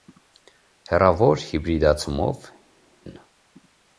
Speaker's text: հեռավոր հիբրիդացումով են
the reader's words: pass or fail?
pass